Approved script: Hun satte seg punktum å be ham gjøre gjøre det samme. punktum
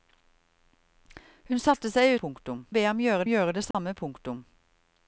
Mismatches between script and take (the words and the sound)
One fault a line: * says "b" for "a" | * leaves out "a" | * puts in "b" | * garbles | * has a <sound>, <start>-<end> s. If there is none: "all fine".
* has a dropout, 3.7-3.7 s